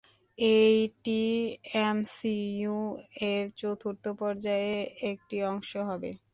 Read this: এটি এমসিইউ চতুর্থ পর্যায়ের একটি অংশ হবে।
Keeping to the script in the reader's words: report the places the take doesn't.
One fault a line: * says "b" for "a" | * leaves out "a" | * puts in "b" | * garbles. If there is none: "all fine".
* puts in "এর"